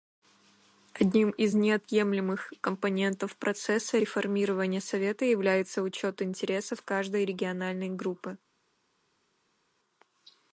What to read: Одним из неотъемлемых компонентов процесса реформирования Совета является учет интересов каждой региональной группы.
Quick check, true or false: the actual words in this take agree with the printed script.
true